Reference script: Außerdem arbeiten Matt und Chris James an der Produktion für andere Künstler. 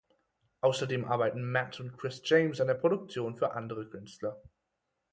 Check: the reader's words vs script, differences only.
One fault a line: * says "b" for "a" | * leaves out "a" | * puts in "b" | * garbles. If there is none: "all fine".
all fine